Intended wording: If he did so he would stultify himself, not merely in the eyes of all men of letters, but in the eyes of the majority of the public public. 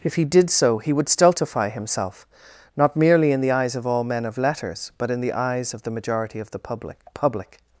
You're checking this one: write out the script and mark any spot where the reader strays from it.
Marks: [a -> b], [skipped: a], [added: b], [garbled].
If he did so he would stultify himself, not merely in the eyes of all men of letters, but in the eyes of the majority of the public public.